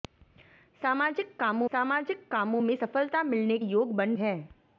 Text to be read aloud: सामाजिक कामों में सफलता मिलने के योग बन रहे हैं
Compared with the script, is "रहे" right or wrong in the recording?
wrong